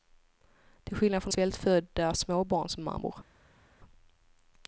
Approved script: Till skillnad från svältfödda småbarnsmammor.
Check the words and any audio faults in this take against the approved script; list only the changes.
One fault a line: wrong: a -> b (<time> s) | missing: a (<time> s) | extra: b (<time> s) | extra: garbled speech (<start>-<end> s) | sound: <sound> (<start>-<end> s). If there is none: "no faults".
no faults